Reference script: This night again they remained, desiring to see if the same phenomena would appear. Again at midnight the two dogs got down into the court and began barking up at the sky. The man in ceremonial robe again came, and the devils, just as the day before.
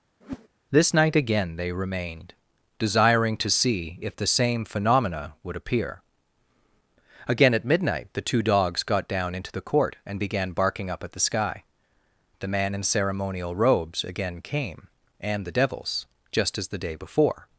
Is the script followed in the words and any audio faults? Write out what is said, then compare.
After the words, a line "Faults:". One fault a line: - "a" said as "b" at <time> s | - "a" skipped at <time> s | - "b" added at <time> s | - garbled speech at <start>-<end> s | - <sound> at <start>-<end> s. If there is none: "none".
This night again they remained, desiring to see if the same phenomena would appear. Again at midnight the two dogs got down into the court and began barking up at the sky. The man in ceremonial robes again came, and the devils, just as the day before.
Faults:
- whoosh at 0.2-0.5 s
- "robe" said as "robes" at 13.6 s